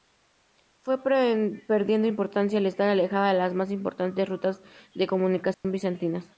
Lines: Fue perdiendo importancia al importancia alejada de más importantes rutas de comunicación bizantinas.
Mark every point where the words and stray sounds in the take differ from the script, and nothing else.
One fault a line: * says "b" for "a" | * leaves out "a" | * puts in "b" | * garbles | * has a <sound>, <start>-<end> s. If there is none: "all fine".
* says "estar" for "importancia"
* puts in "las"
* has a dropout, 5.5-5.6 s